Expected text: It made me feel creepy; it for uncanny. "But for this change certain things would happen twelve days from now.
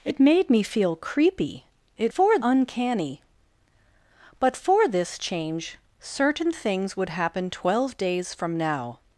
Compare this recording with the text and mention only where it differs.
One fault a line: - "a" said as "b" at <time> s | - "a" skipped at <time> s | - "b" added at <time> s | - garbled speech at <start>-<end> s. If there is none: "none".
none